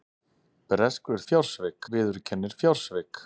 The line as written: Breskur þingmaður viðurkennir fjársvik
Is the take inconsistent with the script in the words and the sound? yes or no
yes